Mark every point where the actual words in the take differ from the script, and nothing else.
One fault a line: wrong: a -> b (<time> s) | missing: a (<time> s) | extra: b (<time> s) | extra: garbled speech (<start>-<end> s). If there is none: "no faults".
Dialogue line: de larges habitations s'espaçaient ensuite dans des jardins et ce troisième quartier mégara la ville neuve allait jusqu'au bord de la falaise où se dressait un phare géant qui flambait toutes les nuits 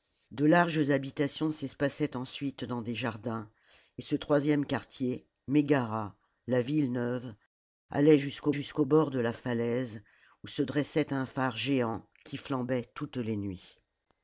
extra: jusqu'au (8.5 s)